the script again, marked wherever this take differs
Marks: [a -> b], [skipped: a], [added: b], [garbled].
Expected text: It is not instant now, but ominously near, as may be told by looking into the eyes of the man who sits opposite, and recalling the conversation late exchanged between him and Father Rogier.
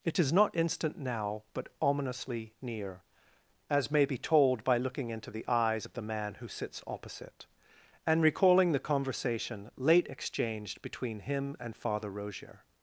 It is not instant now, but ominously near, as may be told by looking into the eyes of the man who sits opposite, and recalling the conversation late exchanged between him and Father Rogier.